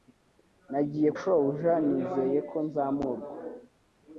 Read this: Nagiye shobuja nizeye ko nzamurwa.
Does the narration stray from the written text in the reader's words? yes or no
no